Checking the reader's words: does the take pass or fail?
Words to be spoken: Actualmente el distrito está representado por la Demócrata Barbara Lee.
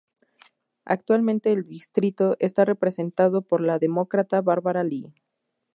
pass